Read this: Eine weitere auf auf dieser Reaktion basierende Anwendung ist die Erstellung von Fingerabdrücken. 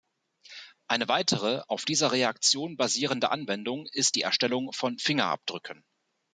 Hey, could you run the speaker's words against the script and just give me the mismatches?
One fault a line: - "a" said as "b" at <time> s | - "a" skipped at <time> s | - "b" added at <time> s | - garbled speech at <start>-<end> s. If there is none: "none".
- "auf" skipped at 1.9 s